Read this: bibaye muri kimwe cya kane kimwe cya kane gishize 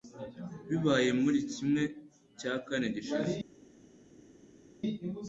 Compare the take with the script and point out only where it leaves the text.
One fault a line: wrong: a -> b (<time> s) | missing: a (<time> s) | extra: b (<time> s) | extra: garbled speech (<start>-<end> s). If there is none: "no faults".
missing: kimwe cya kane (2.9 s)